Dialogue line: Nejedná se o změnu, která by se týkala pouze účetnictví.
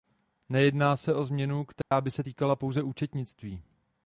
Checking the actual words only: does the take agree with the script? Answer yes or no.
yes